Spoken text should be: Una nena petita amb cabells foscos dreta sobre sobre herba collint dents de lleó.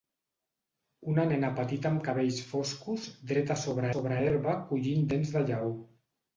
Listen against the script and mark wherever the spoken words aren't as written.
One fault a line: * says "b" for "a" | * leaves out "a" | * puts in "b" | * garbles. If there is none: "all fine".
all fine